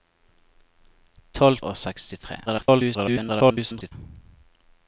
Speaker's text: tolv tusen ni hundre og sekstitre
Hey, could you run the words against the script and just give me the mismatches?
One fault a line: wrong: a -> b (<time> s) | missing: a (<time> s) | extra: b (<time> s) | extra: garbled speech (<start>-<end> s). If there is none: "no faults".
missing: tusen ni hundre (1.6 s)
extra: garbled speech (2.5-3.9 s)